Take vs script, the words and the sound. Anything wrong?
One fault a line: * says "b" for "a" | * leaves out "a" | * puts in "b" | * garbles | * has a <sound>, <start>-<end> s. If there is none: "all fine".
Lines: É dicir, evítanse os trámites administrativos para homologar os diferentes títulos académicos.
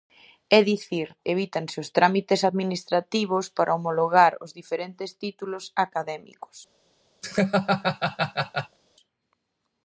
* has a laugh, 7.2-8.8 s